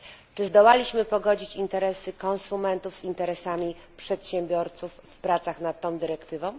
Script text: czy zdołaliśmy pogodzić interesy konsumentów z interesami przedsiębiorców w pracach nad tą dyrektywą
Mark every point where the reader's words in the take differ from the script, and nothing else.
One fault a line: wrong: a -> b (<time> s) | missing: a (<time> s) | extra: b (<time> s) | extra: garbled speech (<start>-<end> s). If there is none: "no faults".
no faults